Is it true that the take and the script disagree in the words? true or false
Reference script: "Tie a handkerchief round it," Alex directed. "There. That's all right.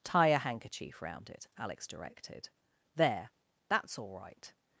false